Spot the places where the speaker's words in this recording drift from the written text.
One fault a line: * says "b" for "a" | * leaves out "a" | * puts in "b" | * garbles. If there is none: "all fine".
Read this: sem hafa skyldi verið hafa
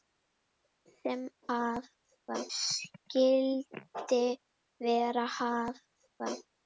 all fine